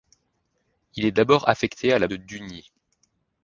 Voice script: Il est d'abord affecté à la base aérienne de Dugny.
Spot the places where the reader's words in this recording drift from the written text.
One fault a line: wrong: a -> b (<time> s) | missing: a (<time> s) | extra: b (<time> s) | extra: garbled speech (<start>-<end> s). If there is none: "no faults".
missing: base aérienne (2.1 s)